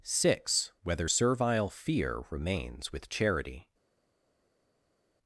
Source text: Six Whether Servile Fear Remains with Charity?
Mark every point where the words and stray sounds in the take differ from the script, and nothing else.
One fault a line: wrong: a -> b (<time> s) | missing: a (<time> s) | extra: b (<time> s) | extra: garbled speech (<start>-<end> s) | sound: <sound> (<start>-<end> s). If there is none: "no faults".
no faults